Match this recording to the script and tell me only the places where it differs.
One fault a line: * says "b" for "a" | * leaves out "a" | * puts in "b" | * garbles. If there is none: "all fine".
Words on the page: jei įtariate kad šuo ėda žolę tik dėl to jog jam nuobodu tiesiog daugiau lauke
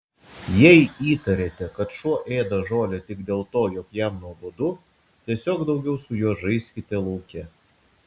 * puts in "su juo žaiskite"